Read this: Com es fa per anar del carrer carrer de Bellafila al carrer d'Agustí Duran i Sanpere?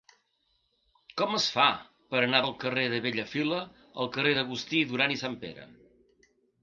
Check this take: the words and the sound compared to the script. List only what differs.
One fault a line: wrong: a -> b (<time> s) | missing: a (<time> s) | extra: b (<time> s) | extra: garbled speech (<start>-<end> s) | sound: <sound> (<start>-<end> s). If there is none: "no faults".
missing: carrer (2.8 s)